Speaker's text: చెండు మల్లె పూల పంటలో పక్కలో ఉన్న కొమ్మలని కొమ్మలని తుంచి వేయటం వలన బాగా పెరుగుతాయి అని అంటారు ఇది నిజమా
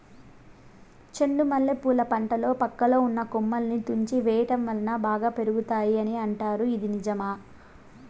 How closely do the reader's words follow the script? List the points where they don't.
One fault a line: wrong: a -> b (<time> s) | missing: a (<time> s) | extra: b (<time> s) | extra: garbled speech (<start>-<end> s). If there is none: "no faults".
missing: కొమ్మలని (3.8 s)